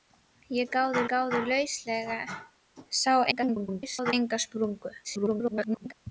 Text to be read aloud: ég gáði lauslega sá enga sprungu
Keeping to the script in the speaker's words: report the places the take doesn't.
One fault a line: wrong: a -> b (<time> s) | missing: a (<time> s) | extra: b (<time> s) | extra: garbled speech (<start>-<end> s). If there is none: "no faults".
extra: gáði (1.1 s)
extra: garbled speech (3.3-4.1 s)
extra: garbled speech (5.0-5.9 s)